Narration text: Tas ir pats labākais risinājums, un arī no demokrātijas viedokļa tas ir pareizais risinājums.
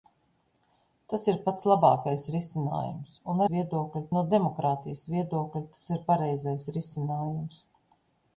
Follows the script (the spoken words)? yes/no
no